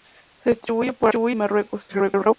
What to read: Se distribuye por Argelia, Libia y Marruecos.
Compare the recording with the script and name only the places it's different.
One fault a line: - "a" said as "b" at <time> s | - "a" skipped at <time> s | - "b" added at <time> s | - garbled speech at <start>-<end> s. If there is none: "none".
- "por Argelia Libia" skipped at 0.9 s
- garbled speech at 1.9-2.4 s